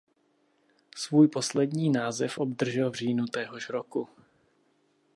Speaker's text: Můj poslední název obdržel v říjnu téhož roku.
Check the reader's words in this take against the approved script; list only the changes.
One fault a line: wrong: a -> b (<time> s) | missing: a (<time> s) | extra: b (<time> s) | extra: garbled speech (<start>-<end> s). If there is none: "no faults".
wrong: Můj -> Svůj (0.9 s)